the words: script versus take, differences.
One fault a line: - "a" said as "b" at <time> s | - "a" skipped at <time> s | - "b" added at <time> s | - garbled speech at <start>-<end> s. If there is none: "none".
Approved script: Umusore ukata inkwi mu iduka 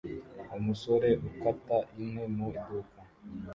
none